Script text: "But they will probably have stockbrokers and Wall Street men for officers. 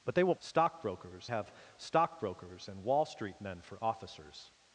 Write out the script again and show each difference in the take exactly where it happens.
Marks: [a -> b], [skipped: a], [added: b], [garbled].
"But they will [probably -> stockbrokers] have stockbrokers and Wall Street men for officers.